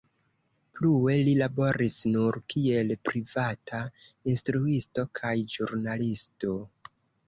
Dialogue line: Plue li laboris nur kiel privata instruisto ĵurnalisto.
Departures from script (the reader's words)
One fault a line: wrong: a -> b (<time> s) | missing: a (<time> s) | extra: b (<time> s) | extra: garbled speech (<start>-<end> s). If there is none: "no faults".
extra: kaj (5.2 s)